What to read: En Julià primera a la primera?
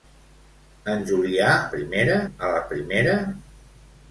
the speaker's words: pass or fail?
pass